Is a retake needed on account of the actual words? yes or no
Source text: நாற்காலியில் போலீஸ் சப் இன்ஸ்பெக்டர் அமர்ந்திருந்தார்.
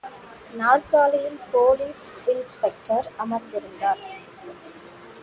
yes